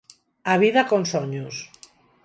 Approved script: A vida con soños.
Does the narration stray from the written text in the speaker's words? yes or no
no